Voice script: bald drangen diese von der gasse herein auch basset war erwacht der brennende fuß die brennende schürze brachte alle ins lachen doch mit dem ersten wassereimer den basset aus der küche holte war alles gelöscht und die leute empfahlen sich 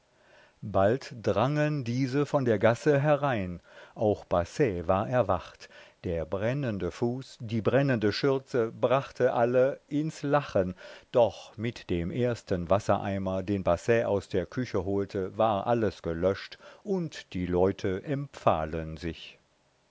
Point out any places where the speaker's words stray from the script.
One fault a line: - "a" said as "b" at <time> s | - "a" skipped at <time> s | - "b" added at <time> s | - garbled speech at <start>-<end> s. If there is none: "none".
none